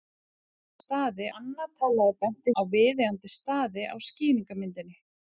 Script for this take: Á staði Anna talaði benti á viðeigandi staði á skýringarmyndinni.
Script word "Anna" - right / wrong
right